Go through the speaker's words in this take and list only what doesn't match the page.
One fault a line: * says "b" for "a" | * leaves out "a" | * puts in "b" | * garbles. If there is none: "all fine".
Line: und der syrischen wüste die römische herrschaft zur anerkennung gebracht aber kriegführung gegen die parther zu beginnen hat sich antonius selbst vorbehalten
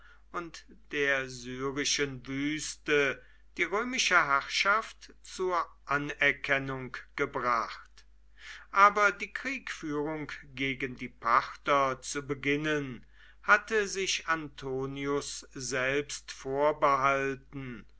* puts in "die"
* says "hatte" for "hat"